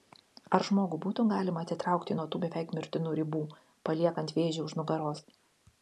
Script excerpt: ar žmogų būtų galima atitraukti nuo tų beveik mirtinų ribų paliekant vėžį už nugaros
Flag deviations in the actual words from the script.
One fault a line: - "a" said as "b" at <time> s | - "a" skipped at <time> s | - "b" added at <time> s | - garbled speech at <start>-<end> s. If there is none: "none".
none